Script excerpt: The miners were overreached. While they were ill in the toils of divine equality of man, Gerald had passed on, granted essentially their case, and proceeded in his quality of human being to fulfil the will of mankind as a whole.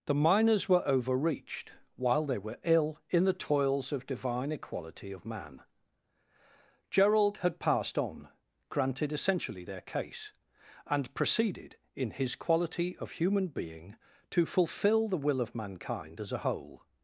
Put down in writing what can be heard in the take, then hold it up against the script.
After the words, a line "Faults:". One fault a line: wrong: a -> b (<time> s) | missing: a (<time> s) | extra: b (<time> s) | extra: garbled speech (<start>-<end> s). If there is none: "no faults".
The miners were overreached. While they were ill in the toils of divine equality of man, Gerald had passed on, granted essentially their case, and proceeded in his quality of human being to fulfil the will of mankind as a whole.
Faults:
no faults